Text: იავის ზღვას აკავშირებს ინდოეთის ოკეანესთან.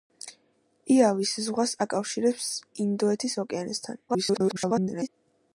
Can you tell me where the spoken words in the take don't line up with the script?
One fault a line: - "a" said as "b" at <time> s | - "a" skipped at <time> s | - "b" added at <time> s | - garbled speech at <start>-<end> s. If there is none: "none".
- garbled speech at 4.1-5.1 s